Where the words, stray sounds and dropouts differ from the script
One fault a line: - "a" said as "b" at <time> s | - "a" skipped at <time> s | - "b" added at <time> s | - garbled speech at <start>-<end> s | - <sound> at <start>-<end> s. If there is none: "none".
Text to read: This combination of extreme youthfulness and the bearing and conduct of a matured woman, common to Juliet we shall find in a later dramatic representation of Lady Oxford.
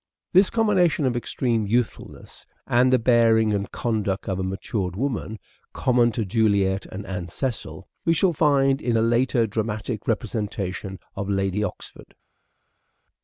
- "and Anne Cecil" added at 6.8 s